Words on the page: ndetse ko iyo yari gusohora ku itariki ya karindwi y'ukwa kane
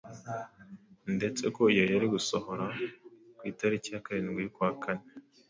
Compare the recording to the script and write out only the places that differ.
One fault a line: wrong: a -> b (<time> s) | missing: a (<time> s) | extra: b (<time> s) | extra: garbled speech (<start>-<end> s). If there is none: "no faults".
no faults